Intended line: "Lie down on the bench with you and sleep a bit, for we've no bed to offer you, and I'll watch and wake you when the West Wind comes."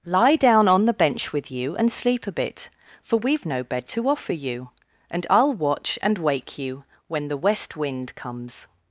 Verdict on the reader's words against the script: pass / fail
pass